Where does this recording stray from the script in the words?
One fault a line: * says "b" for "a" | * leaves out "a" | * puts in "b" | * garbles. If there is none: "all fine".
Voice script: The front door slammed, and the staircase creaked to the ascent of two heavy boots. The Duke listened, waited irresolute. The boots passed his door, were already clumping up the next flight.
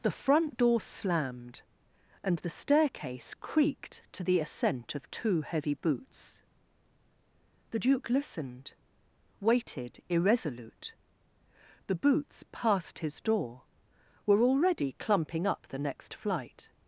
all fine